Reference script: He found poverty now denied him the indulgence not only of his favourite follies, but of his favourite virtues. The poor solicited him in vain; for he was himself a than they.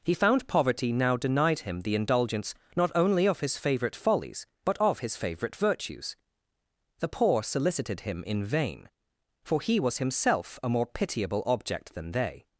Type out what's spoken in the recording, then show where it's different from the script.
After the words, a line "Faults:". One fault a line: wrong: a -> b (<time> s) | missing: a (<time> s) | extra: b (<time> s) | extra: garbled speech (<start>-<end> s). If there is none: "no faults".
He found poverty now denied him the indulgence not only of his favourite follies, but of his favourite virtues. The poor solicited him in vain; for he was himself a more pitiable object than they.
Faults:
extra: more pitiable object (10.7 s)